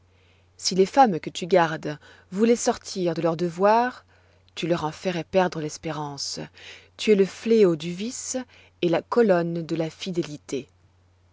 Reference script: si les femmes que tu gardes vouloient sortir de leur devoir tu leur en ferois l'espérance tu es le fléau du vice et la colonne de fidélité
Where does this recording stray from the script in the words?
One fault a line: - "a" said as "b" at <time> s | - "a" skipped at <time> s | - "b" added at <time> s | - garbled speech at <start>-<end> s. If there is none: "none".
- "perdre" added at 5.3 s
- "la" added at 9.8 s